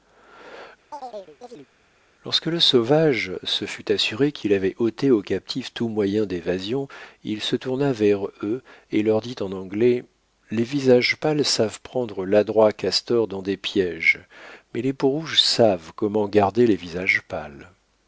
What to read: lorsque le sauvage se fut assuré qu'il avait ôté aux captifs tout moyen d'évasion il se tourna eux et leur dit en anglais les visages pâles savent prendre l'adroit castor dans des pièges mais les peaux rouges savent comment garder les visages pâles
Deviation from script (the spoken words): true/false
true